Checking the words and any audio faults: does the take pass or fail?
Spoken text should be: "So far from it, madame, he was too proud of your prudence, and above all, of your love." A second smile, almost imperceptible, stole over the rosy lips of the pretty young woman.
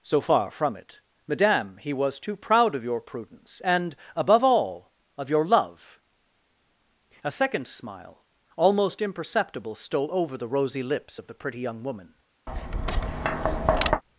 fail